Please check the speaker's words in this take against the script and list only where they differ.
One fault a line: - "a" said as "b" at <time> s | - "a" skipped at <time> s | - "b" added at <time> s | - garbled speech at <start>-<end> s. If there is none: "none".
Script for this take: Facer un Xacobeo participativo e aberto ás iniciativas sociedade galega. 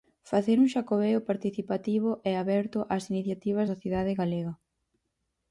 none